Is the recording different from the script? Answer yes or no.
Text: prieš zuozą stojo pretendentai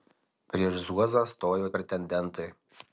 no